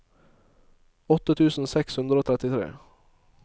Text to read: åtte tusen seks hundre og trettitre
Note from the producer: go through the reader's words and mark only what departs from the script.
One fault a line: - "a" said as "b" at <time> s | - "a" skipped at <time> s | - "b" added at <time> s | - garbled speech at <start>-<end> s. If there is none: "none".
none